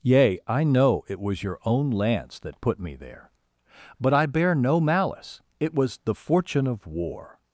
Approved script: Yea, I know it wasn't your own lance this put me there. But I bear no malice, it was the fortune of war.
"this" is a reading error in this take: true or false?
true